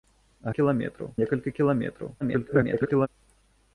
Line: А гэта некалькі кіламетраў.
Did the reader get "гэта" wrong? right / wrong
wrong